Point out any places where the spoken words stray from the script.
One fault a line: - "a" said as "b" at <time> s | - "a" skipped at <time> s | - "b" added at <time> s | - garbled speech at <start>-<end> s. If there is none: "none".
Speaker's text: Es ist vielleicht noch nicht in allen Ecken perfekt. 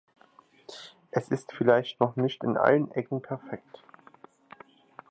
none